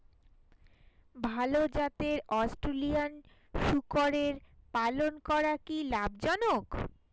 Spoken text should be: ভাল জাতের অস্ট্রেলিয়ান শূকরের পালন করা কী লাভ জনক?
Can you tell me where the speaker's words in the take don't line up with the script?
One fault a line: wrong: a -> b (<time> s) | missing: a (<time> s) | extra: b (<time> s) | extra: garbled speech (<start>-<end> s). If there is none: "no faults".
no faults